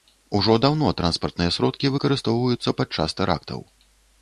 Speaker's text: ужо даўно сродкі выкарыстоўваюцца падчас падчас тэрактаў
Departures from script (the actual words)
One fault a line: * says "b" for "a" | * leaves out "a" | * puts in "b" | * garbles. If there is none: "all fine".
* puts in "транспартныя"
* leaves out "падчас"